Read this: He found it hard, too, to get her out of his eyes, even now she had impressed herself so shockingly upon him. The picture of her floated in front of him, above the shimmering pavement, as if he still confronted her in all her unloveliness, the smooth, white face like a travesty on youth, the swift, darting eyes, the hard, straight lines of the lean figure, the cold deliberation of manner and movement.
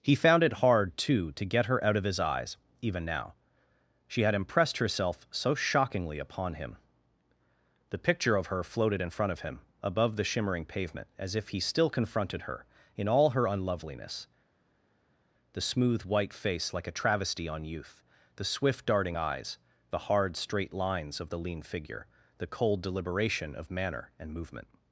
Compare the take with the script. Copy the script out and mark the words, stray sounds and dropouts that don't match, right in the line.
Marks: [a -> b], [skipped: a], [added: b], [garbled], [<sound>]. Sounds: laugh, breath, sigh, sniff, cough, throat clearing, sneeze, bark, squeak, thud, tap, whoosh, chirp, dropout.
He found it hard, too, to get her out of his eyes, even now she had impressed herself so shockingly upon him. The picture of her floated in front of him, above the shimmering pavement, as if he still confronted her in all her unloveliness, the smooth, white face like a travesty on youth, the swift, darting eyes, the hard, straight lines of the lean figure, the cold deliberation of manner and movement.